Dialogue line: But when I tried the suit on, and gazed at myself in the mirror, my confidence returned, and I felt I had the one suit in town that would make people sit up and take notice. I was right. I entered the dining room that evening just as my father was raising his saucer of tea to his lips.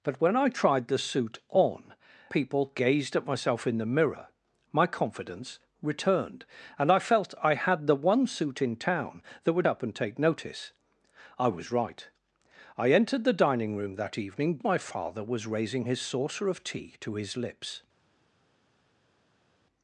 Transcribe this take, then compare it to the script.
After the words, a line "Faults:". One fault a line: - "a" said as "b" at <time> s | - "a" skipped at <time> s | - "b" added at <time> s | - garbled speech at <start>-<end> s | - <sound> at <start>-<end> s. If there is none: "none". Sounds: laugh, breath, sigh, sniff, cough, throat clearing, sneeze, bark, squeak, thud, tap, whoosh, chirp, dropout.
But when I tried the suit on, people gazed at myself in the mirror, my confidence returned, and I felt I had the one suit in town that would up and take notice. I was right. I entered the dining room that evening my father was raising his saucer of tea to his lips.
Faults:
- "and" said as "people" at 2.3 s
- "make people sit" skipped at 9.7 s
- "just as" skipped at 14.6 s